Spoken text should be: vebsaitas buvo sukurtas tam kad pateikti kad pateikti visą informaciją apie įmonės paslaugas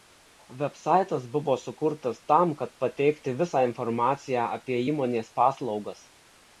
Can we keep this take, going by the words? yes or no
no